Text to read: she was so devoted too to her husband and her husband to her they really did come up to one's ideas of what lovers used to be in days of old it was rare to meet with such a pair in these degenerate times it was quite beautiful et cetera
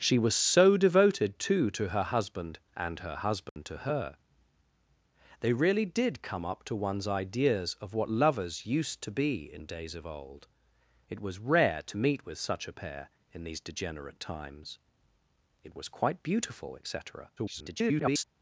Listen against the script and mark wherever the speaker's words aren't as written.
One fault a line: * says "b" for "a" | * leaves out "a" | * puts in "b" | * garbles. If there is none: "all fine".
* garbles